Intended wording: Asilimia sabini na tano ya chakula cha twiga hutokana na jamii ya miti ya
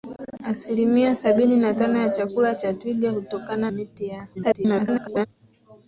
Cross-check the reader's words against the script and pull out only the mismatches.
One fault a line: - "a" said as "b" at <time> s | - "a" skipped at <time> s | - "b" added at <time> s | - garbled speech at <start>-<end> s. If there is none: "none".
- "na jamii ya" skipped at 3.7 s
- garbled speech at 4.3-5.3 s